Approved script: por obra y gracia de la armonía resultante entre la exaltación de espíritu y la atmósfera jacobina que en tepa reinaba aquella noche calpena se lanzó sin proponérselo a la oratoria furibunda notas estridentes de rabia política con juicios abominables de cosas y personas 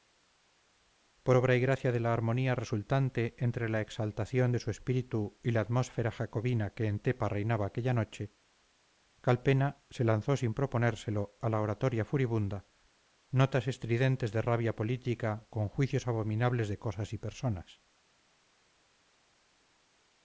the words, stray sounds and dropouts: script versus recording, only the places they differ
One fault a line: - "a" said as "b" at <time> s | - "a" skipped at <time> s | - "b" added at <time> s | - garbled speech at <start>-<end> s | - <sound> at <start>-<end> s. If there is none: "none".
- "su" added at 4.6 s